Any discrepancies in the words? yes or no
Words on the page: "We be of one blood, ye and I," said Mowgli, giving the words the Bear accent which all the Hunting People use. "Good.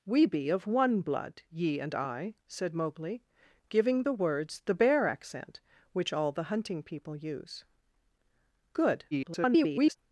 yes